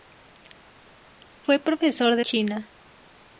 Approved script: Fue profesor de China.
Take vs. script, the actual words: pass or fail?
pass